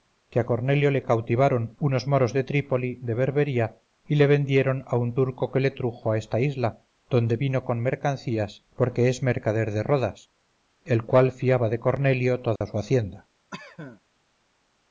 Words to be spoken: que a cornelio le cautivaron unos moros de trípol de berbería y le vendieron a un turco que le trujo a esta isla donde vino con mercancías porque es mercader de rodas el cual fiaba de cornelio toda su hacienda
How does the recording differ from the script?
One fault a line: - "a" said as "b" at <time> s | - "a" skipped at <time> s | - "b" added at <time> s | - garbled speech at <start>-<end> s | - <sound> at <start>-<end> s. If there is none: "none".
- dropout at 12.6-12.6 s
- cough at 13.5-14.0 s